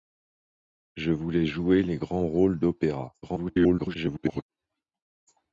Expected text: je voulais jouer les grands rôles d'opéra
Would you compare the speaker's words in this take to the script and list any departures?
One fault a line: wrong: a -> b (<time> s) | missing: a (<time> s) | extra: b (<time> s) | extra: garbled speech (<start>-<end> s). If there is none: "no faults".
extra: garbled speech (3.2-4.4 s)